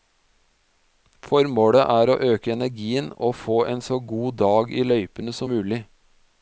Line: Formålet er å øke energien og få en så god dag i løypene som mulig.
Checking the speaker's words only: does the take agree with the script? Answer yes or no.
yes